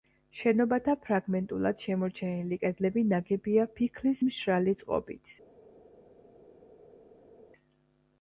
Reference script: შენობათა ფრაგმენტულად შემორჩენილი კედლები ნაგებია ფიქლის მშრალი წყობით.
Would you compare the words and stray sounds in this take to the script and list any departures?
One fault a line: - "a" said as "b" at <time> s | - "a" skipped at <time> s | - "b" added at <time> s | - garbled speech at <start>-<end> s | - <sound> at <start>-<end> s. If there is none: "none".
none